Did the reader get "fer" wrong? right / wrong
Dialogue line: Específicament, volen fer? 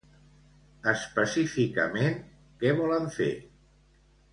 right